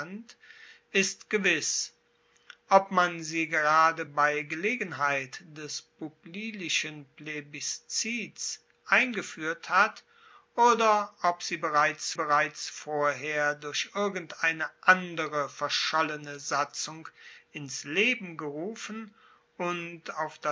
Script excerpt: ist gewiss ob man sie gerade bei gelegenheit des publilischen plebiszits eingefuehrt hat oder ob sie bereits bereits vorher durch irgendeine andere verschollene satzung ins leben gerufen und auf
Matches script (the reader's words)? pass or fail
pass